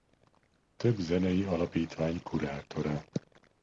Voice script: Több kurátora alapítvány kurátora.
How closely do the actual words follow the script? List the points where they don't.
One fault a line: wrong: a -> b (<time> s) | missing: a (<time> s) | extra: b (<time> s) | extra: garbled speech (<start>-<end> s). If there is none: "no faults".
wrong: kurátora -> zenei (1.0 s)